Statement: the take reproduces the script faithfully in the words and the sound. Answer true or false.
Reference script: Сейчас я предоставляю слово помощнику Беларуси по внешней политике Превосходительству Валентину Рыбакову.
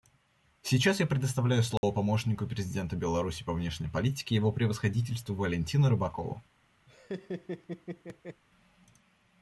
false